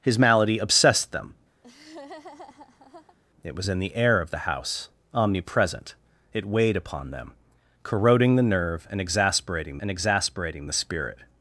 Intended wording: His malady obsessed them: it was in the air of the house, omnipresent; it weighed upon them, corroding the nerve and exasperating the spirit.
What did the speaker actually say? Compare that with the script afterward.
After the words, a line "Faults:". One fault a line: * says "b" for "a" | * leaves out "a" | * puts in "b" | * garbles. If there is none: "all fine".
His malady obsessed them: it was in the air of the house, omnipresent; it weighed upon them, corroding the nerve and exasperating and exasperating the spirit.
Faults:
* puts in "and exasperating"